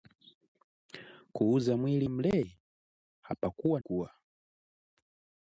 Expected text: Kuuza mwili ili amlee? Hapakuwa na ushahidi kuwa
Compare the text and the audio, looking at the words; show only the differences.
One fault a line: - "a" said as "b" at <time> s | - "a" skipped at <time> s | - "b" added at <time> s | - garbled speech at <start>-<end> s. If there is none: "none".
- "ili" skipped at 2.1 s
- "na ushahidi" skipped at 3.8 s